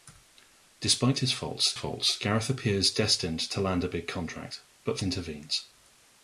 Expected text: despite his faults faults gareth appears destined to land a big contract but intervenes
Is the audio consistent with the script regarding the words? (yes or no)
yes